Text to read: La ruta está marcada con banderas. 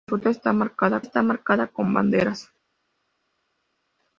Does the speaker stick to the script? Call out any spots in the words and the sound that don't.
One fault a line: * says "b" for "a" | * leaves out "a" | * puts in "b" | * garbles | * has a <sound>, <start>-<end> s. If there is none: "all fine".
* puts in "está marcada"